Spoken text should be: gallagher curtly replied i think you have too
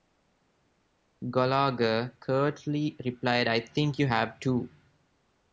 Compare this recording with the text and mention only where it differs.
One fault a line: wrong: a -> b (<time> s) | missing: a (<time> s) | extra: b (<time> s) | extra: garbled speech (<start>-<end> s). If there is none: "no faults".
no faults